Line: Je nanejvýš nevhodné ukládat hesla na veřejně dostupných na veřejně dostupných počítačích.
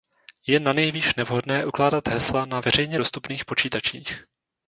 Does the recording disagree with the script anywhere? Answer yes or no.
yes